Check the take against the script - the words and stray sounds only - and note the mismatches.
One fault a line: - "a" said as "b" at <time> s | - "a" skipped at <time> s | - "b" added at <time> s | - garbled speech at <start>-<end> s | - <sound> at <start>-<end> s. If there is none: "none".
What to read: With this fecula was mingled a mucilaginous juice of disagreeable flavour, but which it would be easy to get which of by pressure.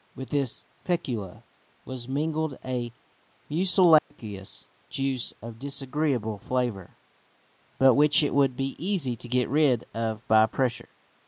- dropout at 4.0-4.1 s
- "which" said as "rid" at 9.5 s